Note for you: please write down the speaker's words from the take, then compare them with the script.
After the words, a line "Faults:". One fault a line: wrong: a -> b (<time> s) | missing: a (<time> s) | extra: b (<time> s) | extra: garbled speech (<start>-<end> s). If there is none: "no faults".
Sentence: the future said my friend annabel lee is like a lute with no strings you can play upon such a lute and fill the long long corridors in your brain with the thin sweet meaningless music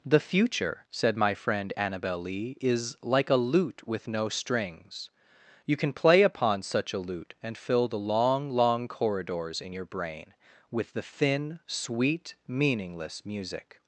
the future said my friend annabel lee is like a lute with no strings you can play upon such a lute and fill the long long corridors in your brain with the thin sweet meaningless music
Faults:
no faults